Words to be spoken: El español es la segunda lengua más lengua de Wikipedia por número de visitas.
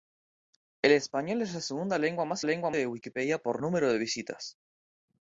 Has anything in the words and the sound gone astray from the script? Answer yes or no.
no